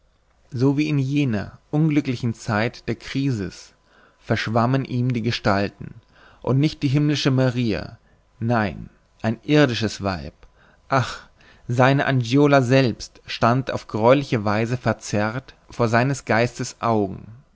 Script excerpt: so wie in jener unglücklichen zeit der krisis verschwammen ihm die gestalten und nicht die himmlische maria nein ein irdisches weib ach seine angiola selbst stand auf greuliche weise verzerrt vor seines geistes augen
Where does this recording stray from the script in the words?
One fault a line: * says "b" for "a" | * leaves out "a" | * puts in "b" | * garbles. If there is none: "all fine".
all fine